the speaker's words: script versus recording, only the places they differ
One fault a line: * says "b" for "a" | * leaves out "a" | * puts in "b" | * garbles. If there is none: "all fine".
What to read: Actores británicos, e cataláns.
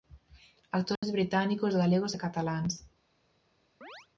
* puts in "galegos"